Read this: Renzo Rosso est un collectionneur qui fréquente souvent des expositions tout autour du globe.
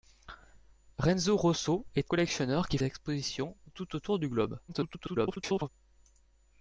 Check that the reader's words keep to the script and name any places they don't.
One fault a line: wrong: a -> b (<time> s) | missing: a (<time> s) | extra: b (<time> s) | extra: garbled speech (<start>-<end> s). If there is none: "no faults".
missing: un (2.1 s)
missing: fréquente souvent des (2.8 s)
extra: garbled speech (4.7-5.7 s)